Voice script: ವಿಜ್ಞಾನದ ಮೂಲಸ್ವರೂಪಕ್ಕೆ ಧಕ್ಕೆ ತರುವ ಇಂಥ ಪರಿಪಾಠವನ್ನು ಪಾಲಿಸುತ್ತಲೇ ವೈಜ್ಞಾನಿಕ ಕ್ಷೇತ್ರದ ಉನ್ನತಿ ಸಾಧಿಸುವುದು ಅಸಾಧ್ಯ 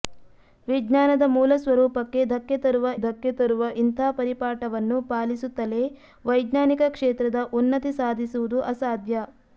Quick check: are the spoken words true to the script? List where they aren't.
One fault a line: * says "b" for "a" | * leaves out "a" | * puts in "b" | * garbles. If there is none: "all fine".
* puts in "ಧಕ್ಕೆ ತರುವ"